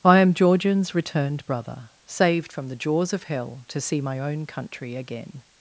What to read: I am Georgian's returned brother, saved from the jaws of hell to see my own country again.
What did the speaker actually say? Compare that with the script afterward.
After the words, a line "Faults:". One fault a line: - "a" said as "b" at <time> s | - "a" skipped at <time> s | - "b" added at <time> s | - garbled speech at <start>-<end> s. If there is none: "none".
I am Georgian's returned brother, saved from the jaws of hell to see my own country again.
Faults:
none